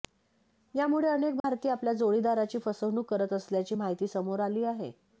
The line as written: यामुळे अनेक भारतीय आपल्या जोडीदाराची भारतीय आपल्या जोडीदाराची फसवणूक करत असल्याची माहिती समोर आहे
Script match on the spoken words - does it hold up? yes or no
no